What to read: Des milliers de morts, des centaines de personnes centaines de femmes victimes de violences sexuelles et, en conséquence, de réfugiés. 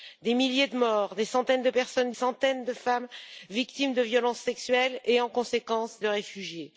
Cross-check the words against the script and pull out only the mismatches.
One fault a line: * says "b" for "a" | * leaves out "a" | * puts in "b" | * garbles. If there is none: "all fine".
all fine